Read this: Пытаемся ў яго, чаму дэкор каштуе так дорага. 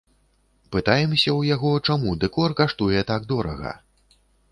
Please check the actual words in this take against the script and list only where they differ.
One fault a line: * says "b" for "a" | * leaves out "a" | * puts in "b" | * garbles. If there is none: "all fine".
all fine